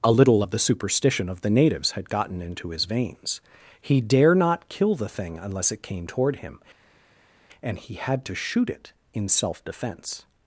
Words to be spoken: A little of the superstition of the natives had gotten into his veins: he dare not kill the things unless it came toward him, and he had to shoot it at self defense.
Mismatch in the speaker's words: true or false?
true